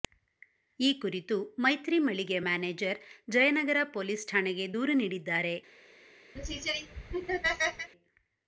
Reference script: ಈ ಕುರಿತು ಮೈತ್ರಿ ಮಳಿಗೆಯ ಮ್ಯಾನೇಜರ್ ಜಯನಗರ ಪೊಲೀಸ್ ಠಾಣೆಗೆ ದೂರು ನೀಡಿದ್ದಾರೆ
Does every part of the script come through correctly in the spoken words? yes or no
yes